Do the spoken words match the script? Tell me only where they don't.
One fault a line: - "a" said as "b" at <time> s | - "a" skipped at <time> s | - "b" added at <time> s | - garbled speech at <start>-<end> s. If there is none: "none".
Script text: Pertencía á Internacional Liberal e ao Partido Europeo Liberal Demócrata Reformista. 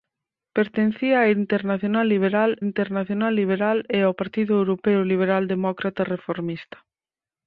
- "Internacional Liberal" added at 2.7 s